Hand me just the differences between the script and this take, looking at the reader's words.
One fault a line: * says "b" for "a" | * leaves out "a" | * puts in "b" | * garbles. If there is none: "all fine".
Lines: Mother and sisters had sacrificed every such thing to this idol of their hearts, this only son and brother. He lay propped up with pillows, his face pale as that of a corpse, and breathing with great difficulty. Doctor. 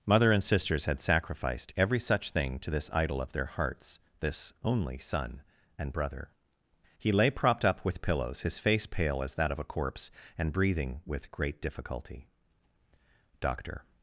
all fine